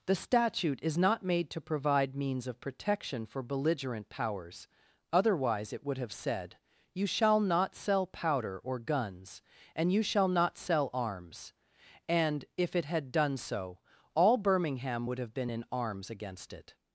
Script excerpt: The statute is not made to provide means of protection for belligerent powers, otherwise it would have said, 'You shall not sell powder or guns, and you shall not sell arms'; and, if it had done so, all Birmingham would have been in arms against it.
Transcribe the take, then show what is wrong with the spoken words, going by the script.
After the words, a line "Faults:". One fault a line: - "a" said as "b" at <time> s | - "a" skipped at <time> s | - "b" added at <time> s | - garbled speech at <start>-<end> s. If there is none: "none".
The statute is not made to provide means of protection for belligerent powers, otherwise it would have said, 'You shall not sell powder or guns, and you shall not sell arms'; and, if it had done so, all Birmingham would have been in arms against it.
Faults:
none